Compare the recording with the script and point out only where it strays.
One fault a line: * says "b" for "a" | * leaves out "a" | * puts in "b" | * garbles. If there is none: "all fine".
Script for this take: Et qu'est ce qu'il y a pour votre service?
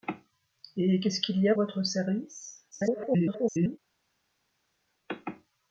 * leaves out "pour"
* garbles